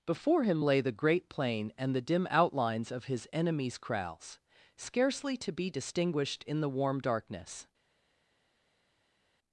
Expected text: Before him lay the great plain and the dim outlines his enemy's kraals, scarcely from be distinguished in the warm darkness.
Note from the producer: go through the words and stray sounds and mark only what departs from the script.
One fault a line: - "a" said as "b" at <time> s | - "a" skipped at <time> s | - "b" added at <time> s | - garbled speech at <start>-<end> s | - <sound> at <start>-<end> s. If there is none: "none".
- "of" added at 2.9 s
- "from" said as "to" at 5.4 s